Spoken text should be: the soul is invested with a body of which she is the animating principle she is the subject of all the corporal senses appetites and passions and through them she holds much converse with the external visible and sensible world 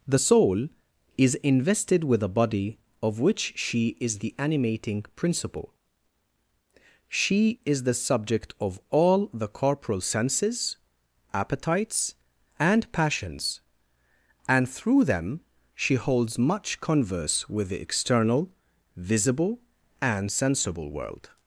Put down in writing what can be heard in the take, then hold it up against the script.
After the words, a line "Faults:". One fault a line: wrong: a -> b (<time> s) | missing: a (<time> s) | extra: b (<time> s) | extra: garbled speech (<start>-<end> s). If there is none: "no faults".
the soul is invested with a body of which she is the animating principle she is the subject of all the corporal senses appetites and passions and through them she holds much converse with the external visible and sensible world
Faults:
no faults